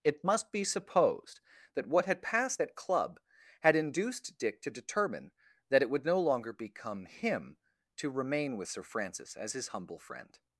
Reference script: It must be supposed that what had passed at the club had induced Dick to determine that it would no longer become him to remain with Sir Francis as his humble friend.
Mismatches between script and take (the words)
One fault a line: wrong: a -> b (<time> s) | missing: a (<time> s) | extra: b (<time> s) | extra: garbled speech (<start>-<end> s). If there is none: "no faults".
missing: the (2.8 s)